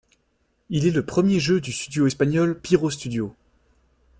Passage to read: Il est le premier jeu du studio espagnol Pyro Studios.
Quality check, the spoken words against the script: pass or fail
pass